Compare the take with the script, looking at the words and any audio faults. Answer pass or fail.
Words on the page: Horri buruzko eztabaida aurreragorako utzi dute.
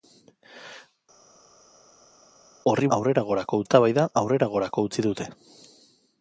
fail